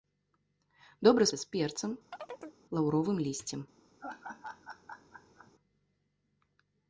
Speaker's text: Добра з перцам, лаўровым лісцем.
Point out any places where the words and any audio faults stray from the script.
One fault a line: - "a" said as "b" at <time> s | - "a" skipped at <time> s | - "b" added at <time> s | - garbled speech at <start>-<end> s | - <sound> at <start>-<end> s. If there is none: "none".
- chirp at 2.1-2.6 s
- laugh at 4.0-5.5 s